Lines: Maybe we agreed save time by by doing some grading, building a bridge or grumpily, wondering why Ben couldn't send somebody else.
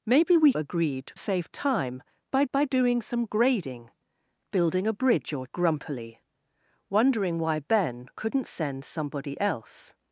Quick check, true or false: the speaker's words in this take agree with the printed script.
true